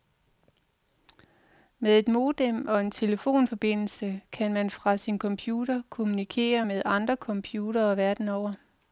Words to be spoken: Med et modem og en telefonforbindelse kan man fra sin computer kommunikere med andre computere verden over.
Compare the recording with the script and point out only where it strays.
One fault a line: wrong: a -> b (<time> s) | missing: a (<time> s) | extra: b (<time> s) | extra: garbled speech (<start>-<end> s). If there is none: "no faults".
no faults